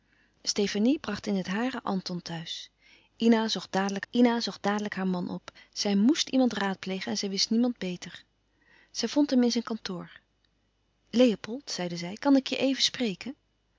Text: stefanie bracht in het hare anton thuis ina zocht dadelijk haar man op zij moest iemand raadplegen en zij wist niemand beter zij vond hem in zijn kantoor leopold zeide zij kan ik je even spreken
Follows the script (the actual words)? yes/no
no